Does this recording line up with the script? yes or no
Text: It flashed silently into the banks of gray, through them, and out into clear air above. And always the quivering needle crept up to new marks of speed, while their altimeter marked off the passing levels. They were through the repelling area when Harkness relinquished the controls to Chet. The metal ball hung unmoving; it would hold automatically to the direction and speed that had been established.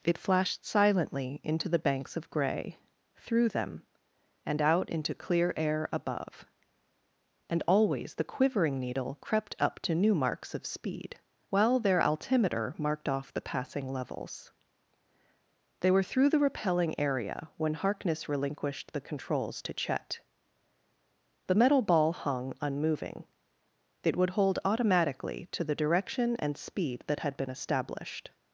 yes